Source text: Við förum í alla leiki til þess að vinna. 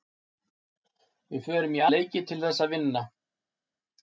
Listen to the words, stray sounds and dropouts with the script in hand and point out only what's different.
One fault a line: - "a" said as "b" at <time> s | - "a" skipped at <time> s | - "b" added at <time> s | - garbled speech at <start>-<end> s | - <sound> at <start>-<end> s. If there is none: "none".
- "alla" skipped at 1.9 s